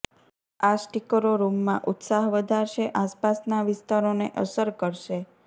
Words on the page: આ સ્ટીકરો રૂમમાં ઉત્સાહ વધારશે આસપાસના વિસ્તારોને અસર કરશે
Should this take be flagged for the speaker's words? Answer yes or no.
no